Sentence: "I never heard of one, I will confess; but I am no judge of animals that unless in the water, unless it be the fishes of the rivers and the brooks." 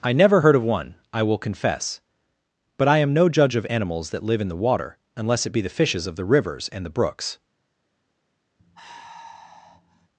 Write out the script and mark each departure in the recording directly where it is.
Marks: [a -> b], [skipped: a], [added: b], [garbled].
"I never heard of one, I will confess; but I am no judge of animals that [unless -> live] in the water, unless it be the fishes of the rivers and the brooks."